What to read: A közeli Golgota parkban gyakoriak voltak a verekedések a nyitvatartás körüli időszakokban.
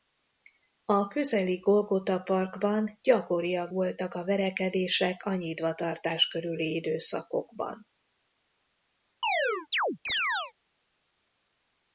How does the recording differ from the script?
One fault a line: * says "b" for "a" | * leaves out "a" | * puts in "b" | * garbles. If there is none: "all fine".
all fine